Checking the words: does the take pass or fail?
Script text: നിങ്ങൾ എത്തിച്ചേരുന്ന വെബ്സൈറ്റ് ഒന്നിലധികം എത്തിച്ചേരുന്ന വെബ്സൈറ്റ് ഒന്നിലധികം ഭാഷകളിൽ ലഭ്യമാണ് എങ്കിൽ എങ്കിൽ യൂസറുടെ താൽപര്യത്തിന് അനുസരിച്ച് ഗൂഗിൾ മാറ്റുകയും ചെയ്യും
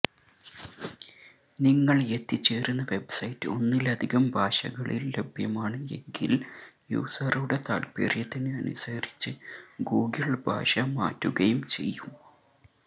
fail